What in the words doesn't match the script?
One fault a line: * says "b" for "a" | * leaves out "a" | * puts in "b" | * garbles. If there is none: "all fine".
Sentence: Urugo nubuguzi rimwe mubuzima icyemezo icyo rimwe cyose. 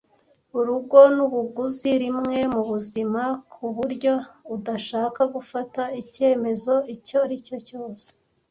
* puts in "kuburyo udashaka gufata"
* says "aricyo" for "rimwe"